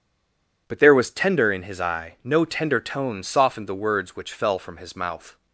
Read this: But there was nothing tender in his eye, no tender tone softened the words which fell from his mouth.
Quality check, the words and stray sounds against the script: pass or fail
fail